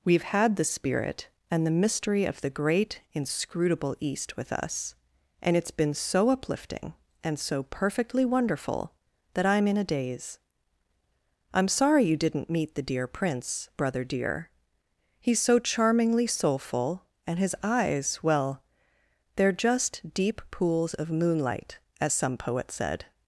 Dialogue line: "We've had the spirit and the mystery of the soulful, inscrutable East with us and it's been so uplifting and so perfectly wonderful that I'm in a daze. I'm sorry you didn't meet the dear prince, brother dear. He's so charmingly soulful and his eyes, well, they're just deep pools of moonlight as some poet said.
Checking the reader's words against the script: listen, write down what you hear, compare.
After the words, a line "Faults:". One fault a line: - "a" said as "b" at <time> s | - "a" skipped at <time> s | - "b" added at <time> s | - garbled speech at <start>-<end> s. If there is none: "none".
"We've had the spirit and the mystery of the great, inscrutable East with us and it's been so uplifting and so perfectly wonderful that I'm in a daze. I'm sorry you didn't meet the dear prince, brother dear. He's so charmingly soulful and his eyes, well, they're just deep pools of moonlight as some poet said.
Faults:
- "soulful" said as "great" at 2.5 s